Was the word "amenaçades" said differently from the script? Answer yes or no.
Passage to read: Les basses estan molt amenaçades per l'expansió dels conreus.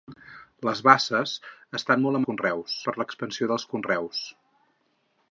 yes